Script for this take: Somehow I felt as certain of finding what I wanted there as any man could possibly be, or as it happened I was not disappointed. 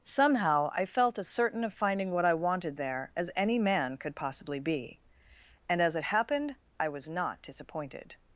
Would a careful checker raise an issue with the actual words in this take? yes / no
yes